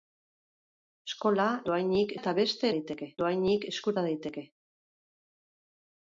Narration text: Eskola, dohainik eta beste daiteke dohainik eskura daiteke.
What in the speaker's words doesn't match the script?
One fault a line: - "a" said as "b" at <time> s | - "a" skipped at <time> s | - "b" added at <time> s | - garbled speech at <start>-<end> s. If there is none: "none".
none